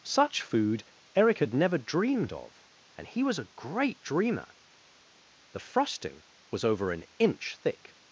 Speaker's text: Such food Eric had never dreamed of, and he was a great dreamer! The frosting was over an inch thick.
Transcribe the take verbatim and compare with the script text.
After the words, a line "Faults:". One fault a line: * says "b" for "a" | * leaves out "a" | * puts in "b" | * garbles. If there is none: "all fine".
Such food Eric had never dreamed of, and he was a great dreamer! The frosting was over an inch thick.
Faults:
all fine